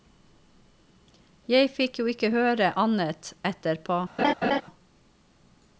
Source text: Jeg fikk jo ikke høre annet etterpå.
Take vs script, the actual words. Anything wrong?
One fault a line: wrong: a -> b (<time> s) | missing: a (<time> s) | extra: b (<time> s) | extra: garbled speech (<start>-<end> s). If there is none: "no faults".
no faults